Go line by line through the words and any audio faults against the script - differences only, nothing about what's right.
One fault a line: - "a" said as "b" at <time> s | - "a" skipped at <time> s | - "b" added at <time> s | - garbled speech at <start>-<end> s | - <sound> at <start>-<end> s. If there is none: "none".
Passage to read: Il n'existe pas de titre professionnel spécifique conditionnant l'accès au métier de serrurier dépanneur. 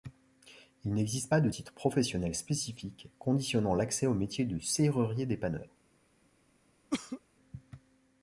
- cough at 6.9-7.2 s